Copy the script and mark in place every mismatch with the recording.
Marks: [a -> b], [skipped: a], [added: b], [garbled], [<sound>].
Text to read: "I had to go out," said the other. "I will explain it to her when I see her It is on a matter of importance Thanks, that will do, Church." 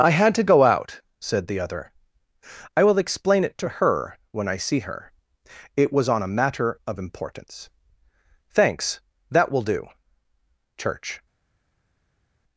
"I had to go out," said the other. "I will explain it to her when I see her It [is -> was] on a matter of importance Thanks, that will do, Church."